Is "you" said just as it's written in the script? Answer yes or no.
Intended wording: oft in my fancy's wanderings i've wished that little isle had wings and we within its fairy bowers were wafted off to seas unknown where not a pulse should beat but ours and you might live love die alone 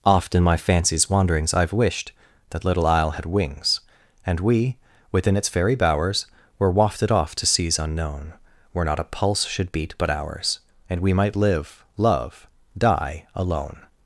no